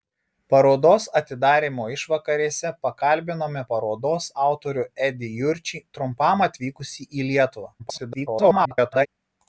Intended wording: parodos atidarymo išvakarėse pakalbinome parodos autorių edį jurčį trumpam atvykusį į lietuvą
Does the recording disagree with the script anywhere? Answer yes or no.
yes